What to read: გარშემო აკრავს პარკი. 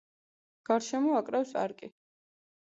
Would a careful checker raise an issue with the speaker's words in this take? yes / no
no